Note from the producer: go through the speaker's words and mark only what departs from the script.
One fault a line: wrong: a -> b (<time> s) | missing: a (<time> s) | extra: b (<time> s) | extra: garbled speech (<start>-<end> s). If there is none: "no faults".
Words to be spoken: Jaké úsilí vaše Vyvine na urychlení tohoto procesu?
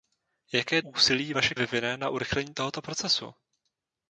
no faults